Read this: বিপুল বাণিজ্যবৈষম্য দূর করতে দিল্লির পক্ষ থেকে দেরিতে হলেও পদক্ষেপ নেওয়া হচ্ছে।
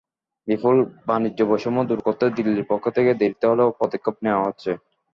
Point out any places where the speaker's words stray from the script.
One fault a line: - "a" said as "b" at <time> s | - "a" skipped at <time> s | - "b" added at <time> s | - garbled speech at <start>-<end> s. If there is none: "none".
none